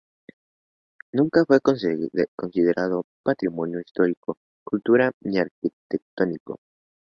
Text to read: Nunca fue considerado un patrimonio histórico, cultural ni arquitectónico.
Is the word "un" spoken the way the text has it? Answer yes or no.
no